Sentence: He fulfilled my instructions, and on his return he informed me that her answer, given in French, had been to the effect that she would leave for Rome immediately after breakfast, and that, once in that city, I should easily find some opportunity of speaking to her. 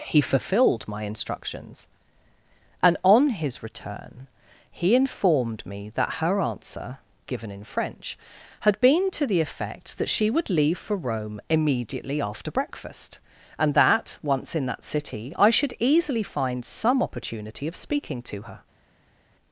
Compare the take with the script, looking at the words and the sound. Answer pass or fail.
pass